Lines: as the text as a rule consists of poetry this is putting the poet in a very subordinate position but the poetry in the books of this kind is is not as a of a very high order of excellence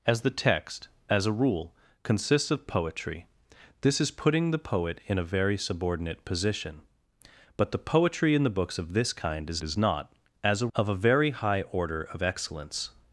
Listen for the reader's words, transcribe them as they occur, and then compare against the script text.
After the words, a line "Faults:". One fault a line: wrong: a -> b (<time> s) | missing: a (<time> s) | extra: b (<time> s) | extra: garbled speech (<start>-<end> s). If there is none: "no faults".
as the text as a rule consists of poetry this is putting the poet in a very subordinate position but the poetry in the books of this kind is is not as a of a very high order of excellence
Faults:
no faults